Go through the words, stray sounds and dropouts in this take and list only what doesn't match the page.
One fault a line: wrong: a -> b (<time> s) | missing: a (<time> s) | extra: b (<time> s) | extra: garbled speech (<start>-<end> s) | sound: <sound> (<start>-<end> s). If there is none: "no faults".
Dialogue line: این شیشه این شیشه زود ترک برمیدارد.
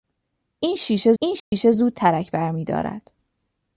sound: dropout (1.4-1.5 s)